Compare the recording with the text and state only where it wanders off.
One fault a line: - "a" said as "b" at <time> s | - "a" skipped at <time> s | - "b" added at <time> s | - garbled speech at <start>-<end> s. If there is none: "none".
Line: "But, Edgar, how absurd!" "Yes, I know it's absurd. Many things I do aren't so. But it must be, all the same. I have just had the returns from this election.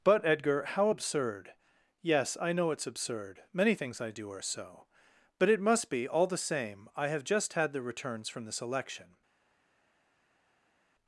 - "aren't" said as "are" at 4.3 s